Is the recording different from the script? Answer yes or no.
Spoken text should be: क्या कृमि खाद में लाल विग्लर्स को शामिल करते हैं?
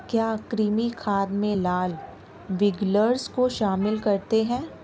no